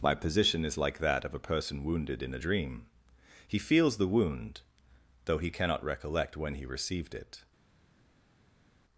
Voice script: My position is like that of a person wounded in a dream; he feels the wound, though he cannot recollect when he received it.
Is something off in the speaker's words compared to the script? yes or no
no